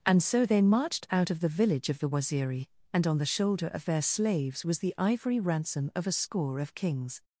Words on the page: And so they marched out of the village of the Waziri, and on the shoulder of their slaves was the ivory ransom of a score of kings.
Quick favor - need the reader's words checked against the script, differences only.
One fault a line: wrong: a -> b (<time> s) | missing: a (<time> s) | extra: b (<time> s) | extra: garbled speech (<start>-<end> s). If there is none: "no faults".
no faults